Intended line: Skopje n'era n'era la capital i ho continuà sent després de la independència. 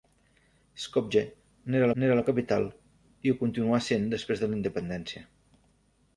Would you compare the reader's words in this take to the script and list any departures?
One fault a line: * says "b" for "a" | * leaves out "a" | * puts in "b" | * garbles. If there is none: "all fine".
all fine